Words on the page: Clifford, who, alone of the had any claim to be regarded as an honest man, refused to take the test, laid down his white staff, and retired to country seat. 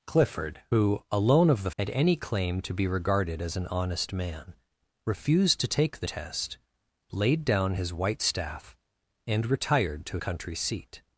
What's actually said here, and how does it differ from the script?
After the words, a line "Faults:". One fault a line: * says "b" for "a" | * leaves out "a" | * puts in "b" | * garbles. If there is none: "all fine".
Clifford, who, alone of the had any claim to be regarded as an honest man, refused to take the test, laid down his white staff, and retired to country seat.
Faults:
all fine